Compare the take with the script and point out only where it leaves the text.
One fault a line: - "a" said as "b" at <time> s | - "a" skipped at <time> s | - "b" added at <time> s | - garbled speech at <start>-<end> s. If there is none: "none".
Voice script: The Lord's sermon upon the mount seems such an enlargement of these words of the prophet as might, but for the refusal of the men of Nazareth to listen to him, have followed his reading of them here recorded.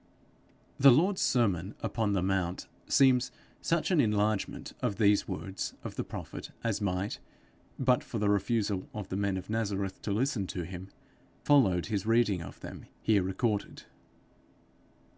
- "have" skipped at 10.9 s